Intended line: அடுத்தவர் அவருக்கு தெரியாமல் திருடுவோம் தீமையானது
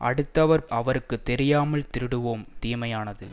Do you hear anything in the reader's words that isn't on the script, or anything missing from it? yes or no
no